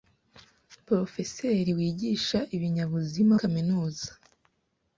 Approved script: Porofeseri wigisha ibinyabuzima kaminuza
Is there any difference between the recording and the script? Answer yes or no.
no